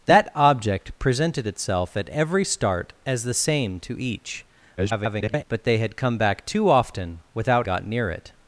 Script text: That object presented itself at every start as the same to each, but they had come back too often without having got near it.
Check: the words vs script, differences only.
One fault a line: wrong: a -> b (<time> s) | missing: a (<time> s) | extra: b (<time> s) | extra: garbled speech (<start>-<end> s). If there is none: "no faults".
extra: garbled speech (4.8-5.4 s)
missing: having (7.7 s)